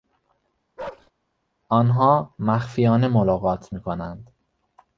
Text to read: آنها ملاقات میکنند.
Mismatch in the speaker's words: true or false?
true